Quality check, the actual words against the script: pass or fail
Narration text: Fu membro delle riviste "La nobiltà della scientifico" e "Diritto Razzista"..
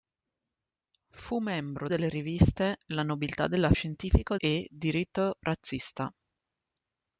pass